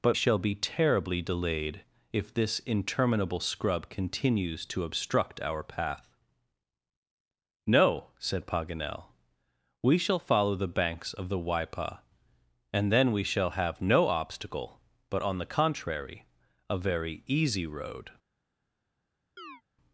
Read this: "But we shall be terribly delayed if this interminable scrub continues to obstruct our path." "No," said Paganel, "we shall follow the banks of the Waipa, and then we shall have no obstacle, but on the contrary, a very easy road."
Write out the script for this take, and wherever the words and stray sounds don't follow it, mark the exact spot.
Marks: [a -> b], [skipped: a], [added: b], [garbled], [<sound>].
"But [skipped: we] shall be terribly delayed if this interminable scrub continues to obstruct our path." "No," said Paganel, "we shall follow the banks of the Waipa, and then we shall have no obstacle, but on the contrary, a very easy road." [chirp]